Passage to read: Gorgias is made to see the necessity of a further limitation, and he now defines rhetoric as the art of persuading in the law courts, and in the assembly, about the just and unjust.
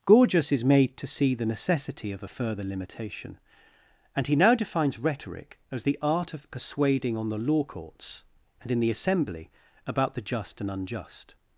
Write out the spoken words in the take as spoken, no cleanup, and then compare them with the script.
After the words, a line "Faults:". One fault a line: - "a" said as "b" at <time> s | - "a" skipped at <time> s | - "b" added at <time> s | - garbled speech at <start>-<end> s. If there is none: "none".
Gorgias is made to see the necessity of a further limitation, and he now defines rhetoric as the art of persuading on the law courts, and in the assembly, about the just and unjust.
Faults:
- "in" said as "on" at 7.2 s